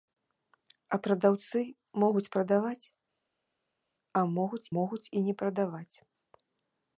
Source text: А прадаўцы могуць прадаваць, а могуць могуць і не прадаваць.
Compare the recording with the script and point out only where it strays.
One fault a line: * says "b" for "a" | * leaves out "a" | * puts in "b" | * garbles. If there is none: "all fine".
all fine